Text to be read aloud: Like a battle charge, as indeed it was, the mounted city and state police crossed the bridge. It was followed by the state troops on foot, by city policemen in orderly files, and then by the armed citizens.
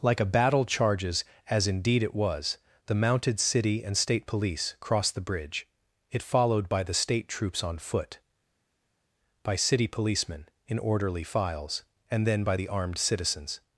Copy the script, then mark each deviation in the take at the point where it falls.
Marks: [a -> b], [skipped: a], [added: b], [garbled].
Like a battle [charge, -> charges] as indeed it was, the mounted city and state police crossed the bridge. It [skipped: was] followed by the state troops on foot, by city policemen in orderly files, and then by the armed citizens.